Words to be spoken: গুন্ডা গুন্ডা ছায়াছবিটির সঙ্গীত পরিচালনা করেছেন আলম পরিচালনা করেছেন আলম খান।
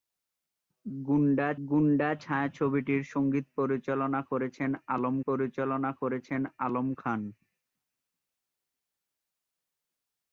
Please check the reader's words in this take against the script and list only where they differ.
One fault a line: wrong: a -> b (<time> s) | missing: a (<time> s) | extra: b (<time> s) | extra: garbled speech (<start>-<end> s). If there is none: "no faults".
no faults